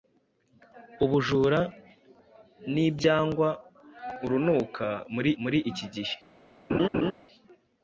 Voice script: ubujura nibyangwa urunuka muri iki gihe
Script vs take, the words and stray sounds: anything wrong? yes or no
yes